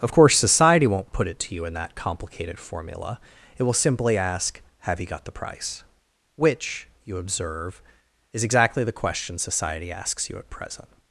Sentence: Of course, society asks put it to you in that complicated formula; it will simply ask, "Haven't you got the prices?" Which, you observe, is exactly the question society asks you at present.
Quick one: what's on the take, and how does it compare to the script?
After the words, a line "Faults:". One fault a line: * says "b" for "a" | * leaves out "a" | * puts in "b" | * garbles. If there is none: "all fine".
Of course, society won't put it to you in that complicated formula; it will simply ask, "Have you got the price?" Which, you observe, is exactly the question society asks you at present.
Faults:
* says "won't" for "asks"
* says "Have" for "Haven't"
* says "price" for "prices"